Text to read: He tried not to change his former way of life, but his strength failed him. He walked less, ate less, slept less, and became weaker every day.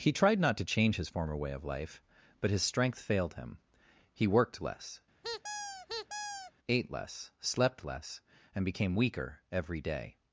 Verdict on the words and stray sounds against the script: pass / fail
fail